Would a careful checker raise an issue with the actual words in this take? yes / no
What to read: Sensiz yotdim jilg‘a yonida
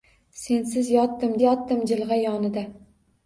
yes